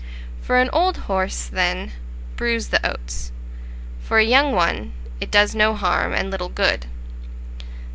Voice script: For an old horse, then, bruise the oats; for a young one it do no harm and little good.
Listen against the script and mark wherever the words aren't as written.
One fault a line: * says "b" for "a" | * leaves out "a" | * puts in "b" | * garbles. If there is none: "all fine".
* says "does" for "do"